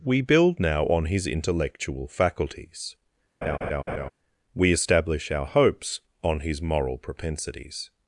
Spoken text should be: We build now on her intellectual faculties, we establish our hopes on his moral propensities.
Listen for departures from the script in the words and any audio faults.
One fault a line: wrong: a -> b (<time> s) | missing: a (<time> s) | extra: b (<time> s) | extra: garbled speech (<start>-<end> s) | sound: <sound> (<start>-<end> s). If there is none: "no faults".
wrong: her -> his (1.1 s)
sound: laugh (3.4-4.1 s)